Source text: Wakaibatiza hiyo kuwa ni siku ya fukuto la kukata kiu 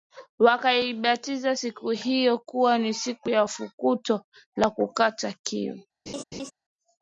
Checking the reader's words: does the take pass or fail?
fail